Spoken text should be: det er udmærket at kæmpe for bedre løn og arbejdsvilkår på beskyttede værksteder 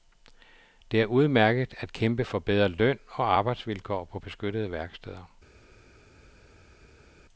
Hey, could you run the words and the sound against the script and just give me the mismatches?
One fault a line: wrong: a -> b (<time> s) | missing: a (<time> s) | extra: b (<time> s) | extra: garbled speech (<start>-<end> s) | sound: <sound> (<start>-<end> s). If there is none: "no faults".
no faults